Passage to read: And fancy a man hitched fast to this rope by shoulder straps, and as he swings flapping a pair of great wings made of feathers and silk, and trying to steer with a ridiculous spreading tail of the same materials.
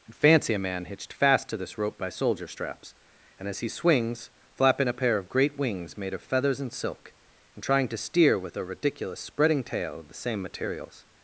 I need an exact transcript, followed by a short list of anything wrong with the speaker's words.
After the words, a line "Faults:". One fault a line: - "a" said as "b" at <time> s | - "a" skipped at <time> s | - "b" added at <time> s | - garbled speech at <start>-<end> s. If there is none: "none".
And fancy a man hitched fast to this rope by soldier straps, and as he swings flapping a pair of great wings made of feathers and silk, and trying to steer with a ridiculous spreading tail of the same materials.
Faults:
- "shoulder" said as "soldier" at 2.1 s